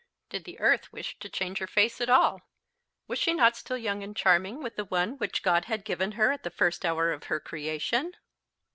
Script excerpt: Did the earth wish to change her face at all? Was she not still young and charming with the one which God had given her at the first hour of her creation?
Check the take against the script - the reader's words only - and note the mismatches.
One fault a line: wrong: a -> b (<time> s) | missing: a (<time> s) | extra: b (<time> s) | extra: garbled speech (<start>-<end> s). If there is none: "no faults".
no faults